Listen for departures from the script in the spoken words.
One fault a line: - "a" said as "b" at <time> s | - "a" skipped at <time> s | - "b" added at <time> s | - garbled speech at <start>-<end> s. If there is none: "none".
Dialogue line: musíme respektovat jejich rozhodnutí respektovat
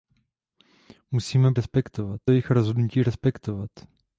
none